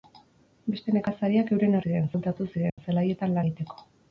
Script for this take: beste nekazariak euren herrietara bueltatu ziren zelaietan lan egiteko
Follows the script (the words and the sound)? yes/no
no